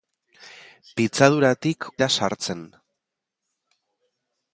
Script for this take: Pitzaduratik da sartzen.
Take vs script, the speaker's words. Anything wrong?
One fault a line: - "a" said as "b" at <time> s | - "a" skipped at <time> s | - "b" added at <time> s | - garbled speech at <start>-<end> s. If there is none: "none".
none